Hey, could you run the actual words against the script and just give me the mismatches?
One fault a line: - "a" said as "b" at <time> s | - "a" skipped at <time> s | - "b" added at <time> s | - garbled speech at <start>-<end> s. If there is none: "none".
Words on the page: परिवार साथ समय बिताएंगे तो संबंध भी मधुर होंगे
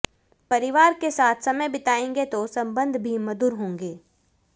- "के" added at 0.9 s